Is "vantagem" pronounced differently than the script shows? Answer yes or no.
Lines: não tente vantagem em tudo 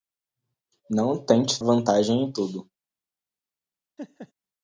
no